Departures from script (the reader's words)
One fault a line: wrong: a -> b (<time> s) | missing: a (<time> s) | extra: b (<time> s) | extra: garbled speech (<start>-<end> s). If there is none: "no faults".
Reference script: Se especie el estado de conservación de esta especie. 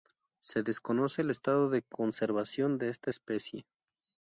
wrong: especie -> desconoce (0.6 s)